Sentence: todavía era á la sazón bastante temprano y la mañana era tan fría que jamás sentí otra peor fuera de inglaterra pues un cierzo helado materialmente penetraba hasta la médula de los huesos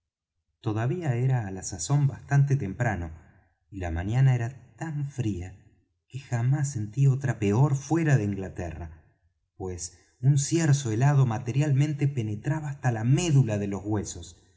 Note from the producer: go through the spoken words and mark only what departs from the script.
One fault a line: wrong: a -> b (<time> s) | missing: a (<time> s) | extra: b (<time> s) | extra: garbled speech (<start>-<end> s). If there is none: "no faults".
no faults